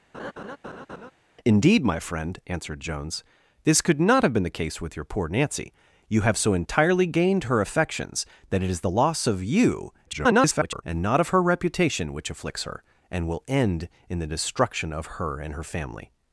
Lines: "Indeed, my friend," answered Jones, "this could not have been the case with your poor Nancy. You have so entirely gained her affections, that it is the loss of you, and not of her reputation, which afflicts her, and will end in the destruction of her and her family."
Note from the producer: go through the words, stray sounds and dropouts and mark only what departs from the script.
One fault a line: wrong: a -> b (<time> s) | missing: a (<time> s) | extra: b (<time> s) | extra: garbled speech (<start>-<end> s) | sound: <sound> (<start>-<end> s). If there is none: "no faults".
sound: laugh (0.1-1.1 s)
extra: garbled speech (10.1-10.8 s)